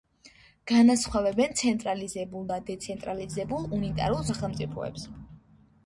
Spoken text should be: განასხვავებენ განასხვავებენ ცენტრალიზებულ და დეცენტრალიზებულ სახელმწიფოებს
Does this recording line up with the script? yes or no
no